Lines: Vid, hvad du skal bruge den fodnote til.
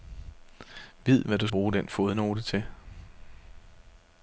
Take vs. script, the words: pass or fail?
fail